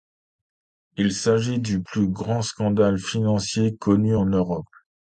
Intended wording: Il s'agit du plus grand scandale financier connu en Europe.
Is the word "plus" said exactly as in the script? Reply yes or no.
yes